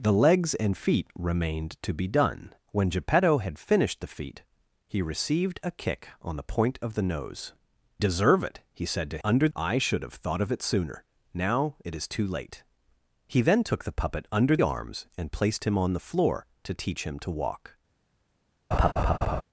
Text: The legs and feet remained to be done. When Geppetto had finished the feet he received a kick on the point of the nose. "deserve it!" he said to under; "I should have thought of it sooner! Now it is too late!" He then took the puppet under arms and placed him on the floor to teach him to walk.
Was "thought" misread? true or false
false